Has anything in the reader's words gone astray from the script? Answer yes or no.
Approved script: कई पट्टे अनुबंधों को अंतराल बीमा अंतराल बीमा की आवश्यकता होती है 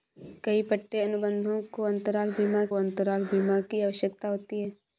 no